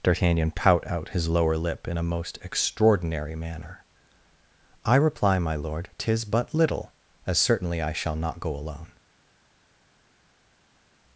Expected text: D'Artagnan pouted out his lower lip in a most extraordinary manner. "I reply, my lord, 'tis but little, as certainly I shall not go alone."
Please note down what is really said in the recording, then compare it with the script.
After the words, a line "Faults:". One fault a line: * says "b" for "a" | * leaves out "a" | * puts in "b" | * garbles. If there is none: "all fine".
D'Artagnan pout out his lower lip in a most extraordinary manner. "I reply, my lord, 'tis but little, as certainly I shall not go alone."
Faults:
* says "pout" for "pouted"